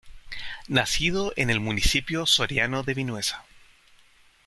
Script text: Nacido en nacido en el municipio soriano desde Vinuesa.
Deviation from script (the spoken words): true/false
true